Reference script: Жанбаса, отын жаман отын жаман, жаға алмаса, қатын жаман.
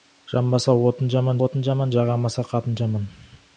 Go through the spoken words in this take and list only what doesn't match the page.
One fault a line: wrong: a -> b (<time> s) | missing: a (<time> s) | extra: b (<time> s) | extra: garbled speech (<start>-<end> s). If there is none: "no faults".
no faults